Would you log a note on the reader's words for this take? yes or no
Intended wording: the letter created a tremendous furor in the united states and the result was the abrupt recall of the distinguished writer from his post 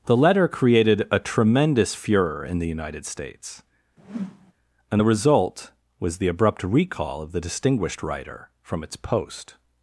yes